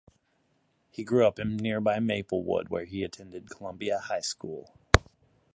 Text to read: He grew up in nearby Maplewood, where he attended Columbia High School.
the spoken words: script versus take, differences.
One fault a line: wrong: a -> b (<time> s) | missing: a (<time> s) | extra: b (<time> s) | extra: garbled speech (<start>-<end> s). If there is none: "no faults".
no faults